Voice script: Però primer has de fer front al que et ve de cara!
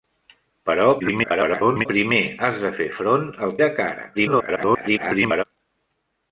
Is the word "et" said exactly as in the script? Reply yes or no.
no